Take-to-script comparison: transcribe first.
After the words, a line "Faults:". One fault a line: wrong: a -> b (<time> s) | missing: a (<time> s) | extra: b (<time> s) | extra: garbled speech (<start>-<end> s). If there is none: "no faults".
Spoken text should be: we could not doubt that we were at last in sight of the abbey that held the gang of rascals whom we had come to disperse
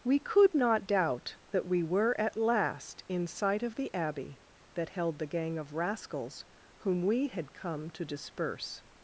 we could not doubt that we were at last in sight of the abbey that held the gang of rascals whom we had come to disperse
Faults:
no faults